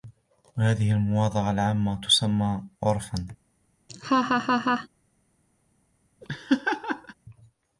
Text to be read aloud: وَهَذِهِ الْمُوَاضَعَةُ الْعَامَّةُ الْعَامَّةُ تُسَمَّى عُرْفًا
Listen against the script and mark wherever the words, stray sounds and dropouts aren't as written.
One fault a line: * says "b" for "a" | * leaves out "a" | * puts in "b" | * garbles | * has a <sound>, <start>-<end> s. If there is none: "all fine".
* leaves out "الْعَامَّةُ"
* has a laugh, 3.9-4.9 s
* has a laugh, 6.2-7.1 s